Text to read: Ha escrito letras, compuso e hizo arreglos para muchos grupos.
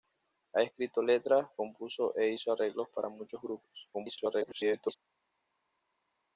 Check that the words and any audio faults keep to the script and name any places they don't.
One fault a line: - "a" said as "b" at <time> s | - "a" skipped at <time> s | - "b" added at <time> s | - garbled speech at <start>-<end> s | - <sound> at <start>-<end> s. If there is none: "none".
- garbled speech at 3.9-5.0 s